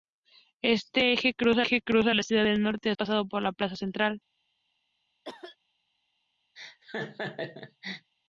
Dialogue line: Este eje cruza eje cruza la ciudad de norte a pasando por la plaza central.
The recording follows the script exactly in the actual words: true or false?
true